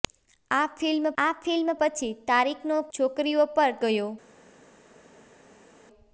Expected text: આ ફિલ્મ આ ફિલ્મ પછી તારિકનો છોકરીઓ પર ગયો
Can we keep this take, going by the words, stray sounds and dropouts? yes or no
yes